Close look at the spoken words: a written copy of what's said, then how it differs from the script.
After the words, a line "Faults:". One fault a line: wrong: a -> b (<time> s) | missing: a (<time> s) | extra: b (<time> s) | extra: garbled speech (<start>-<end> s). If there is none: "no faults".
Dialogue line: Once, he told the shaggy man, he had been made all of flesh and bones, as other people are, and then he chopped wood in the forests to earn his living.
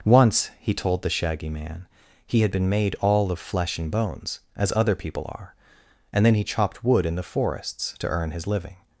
Once, he told the shaggy man, he had been made all of flesh and bones, as other people are, and then he chopped wood in the forests to earn his living.
Faults:
no faults